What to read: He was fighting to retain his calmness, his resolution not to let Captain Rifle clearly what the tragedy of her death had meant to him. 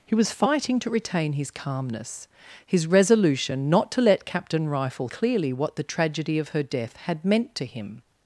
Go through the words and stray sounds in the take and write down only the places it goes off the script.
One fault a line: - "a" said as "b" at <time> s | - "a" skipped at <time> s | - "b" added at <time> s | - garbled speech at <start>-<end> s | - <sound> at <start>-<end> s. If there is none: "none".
none